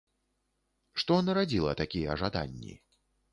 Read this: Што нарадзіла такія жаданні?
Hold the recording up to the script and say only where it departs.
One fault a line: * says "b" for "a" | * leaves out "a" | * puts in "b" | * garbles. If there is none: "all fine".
all fine